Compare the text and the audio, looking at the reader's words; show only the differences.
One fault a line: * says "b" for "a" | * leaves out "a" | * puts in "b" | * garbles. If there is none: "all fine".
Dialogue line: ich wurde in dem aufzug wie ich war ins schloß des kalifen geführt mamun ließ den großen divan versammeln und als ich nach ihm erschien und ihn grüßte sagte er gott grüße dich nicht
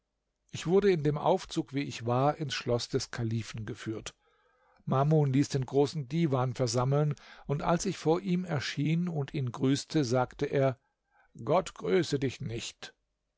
* says "vor" for "nach"